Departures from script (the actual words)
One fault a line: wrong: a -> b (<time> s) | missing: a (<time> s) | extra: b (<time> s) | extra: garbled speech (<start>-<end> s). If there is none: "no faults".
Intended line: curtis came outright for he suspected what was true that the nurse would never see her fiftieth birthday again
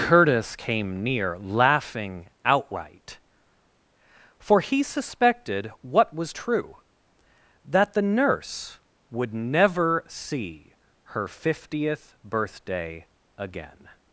extra: near laughing (1.0 s)